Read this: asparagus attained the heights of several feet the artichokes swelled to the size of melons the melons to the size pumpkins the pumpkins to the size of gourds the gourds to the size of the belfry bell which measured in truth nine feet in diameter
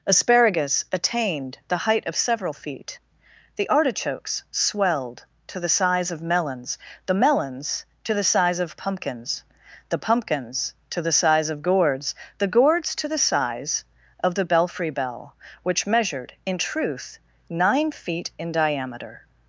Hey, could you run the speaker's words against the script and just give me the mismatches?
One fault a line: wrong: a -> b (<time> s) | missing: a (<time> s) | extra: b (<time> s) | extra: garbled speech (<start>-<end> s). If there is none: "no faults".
wrong: heights -> height (1.9 s)
extra: of (8.6 s)